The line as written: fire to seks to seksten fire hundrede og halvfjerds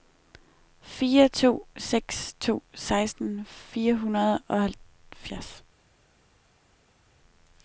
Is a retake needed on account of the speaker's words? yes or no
no